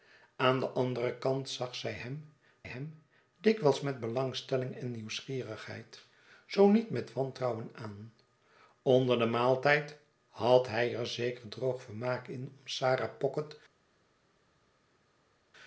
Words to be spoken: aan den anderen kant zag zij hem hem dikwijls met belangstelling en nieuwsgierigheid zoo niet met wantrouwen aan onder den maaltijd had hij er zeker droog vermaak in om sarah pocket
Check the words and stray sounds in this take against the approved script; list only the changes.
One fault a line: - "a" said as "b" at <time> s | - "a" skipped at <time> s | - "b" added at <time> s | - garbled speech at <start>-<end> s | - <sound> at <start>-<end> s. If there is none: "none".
none